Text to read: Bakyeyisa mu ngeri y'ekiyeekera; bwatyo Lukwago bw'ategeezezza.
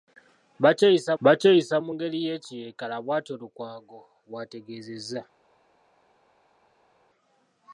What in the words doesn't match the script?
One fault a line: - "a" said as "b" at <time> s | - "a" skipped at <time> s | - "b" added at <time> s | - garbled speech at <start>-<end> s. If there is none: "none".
- "bakyeyisa" added at 1.2 s